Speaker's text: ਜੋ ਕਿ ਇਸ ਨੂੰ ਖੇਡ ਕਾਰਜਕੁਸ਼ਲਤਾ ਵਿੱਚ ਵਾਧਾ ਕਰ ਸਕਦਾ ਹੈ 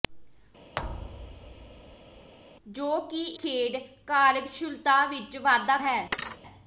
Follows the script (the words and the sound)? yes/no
no